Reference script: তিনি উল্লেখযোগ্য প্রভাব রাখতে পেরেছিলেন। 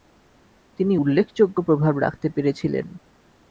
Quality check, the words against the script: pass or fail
pass